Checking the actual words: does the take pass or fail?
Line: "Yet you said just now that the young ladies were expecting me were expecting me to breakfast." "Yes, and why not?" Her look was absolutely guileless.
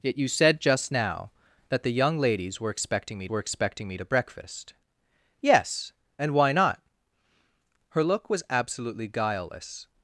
pass